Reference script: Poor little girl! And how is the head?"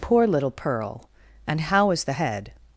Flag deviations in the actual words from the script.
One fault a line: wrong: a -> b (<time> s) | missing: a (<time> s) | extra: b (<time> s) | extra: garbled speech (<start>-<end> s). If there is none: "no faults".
wrong: girl -> pearl (0.5 s)